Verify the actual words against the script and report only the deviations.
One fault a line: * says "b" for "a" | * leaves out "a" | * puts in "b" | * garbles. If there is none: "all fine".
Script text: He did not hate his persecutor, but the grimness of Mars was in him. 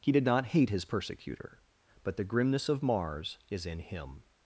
* says "is" for "was"